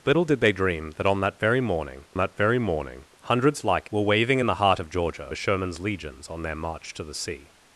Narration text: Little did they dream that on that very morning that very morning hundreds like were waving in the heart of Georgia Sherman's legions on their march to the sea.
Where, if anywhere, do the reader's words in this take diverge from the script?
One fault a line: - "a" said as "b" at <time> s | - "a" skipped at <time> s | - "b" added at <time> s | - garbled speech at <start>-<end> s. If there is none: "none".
none